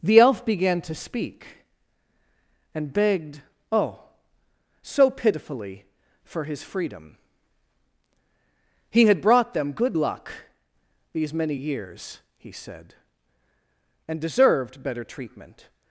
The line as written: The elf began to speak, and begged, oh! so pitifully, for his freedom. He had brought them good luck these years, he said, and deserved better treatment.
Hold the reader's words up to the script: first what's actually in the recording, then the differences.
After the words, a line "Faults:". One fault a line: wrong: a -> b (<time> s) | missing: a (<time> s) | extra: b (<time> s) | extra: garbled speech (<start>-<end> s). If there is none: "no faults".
The elf began to speak, and begged, oh! so pitifully, for his freedom. He had brought them good luck these many years, he said, and deserved better treatment.
Faults:
extra: many (11.3 s)